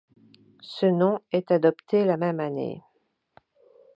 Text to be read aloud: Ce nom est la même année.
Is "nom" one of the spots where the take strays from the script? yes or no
no